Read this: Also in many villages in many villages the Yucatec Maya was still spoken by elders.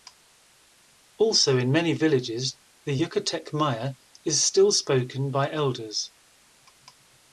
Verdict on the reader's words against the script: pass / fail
fail